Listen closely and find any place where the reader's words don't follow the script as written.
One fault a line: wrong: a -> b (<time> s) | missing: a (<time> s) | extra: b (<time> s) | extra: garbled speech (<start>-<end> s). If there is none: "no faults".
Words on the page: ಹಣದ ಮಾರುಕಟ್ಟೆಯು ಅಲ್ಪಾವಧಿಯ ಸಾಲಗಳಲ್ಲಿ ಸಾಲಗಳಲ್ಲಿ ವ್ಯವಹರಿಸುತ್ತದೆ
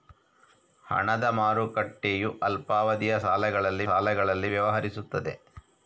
no faults